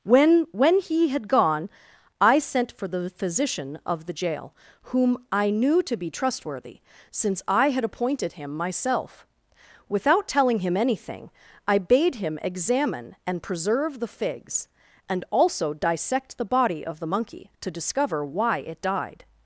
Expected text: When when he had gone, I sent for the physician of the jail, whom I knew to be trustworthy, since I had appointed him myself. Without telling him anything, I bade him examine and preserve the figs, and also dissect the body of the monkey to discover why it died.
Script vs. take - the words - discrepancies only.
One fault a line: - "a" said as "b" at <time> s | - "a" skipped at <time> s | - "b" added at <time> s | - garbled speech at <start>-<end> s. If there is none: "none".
none